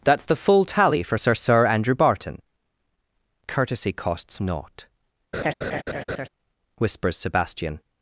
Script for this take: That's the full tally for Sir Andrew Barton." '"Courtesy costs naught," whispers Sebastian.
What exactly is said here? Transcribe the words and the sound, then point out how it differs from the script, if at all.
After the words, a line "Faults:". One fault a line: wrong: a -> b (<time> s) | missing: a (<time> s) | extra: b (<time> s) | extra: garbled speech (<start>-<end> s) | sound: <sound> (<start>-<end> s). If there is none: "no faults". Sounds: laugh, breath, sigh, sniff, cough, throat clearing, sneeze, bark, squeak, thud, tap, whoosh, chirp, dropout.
That's the full tally for Sir Sir Andrew Barton." '"Courtesy costs naught," whispers Sebastian.
Faults:
extra: Sir (1.3 s)
sound: laugh (5.3-6.3 s)